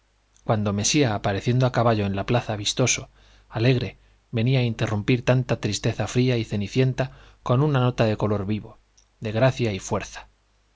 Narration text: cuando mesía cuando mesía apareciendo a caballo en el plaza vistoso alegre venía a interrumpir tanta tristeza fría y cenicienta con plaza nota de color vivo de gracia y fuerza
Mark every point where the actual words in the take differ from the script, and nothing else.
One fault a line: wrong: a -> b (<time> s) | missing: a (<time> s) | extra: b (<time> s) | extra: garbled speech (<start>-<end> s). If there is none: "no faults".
missing: cuando mesía (1.1 s)
wrong: el -> la (2.1 s)
wrong: plaza -> una (7.6 s)